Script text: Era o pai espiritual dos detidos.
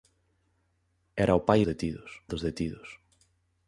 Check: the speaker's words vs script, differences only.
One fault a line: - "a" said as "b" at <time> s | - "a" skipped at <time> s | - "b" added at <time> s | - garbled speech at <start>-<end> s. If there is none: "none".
- "espiritual" said as "detidos" at 1.6 s